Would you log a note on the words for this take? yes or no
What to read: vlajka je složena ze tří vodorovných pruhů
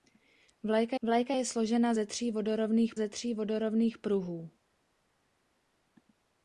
yes